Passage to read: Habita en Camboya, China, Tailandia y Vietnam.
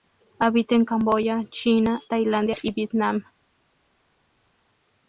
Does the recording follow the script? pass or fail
pass